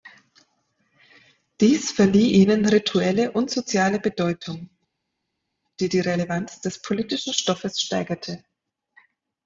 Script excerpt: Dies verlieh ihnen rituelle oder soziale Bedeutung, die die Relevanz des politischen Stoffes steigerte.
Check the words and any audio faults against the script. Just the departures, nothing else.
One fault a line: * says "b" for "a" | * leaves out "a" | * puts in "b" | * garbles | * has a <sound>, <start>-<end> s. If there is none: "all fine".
* says "und" for "oder"